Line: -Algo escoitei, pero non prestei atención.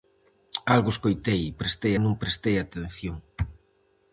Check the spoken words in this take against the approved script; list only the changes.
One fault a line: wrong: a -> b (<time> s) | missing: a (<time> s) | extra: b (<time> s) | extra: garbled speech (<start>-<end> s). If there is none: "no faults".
wrong: pero -> prestei (1.6 s)